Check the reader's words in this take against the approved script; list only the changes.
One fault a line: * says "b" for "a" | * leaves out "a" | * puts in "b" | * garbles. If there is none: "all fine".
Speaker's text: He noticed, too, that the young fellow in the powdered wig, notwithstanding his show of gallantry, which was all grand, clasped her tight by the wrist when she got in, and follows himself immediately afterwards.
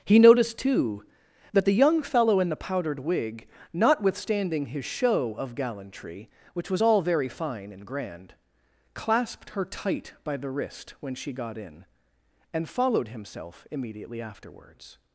* puts in "very fine and"
* says "followed" for "follows"